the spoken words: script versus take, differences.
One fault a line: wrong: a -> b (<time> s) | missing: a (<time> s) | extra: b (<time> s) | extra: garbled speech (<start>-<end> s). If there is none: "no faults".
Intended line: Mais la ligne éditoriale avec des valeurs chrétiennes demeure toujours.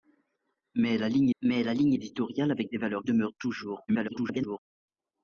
extra: mais la ligne (1.4 s)
missing: chrétiennes (3.0 s)
extra: garbled speech (3.9-4.6 s)